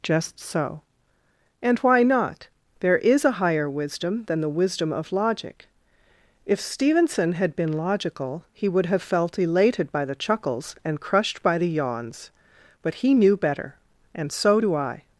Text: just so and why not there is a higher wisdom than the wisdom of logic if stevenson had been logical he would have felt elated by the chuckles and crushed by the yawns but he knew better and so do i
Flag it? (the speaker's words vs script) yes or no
no